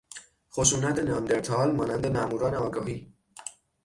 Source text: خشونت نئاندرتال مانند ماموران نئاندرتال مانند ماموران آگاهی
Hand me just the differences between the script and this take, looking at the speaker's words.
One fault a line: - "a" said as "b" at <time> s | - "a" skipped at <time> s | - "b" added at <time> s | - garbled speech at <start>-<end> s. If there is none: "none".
- "نئاندرتال مانند ماموران" skipped at 2.5 s